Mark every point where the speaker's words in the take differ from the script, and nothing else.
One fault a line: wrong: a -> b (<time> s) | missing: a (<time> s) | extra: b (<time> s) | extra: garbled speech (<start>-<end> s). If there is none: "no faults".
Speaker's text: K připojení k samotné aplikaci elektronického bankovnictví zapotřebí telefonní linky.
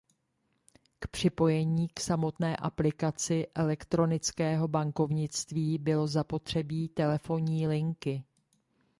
extra: bylo (5.8 s)